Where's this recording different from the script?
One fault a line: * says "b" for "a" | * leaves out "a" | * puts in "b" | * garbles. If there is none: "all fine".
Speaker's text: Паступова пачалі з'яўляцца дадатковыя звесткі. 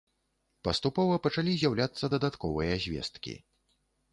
all fine